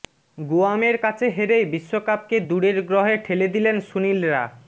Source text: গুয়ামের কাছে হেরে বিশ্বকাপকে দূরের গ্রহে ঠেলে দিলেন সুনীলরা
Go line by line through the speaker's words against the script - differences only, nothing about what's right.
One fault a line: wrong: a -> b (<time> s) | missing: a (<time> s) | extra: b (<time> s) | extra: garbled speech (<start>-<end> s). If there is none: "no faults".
no faults